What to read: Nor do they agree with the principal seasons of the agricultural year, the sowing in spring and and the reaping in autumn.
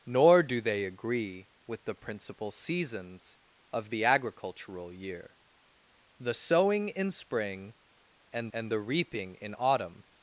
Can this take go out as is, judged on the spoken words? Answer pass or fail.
pass